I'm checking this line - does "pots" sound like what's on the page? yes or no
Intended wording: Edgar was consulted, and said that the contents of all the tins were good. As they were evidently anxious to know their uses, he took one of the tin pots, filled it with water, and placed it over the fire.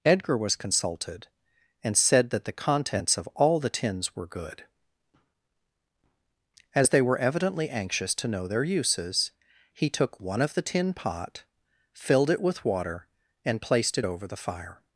no